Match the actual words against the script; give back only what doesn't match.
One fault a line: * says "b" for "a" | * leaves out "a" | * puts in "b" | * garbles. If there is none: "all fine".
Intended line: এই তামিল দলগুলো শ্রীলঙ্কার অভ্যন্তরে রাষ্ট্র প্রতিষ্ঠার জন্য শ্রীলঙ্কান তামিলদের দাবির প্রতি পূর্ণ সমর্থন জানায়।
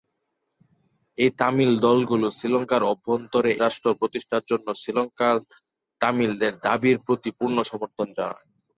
all fine